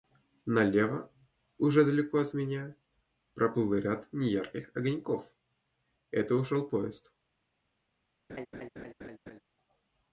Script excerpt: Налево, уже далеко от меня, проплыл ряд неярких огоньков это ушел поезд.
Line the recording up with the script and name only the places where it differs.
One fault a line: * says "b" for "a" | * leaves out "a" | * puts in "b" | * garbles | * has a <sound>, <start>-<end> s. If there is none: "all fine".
* has a laugh, 8.3-9.4 s